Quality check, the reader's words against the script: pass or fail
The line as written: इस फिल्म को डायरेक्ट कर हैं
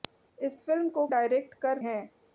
pass